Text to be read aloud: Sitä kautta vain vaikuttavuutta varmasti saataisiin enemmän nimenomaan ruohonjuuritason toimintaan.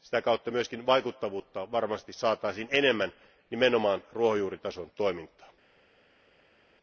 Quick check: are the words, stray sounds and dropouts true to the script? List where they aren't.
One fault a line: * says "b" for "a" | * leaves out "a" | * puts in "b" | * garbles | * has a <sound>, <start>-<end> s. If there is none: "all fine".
* says "myös" for "vain"